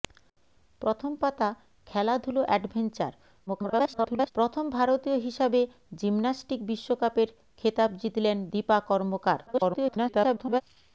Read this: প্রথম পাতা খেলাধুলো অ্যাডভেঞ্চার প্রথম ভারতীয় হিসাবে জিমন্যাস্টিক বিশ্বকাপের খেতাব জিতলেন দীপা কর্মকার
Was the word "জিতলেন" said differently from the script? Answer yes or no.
no